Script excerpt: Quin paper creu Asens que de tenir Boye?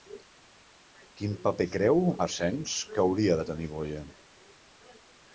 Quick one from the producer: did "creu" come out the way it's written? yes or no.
yes